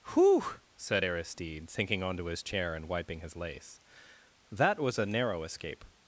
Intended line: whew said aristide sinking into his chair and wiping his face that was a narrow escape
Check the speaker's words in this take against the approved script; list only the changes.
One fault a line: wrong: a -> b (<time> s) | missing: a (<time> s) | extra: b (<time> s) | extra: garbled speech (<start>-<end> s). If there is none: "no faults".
wrong: into -> onto (2.0 s)
wrong: face -> lace (3.3 s)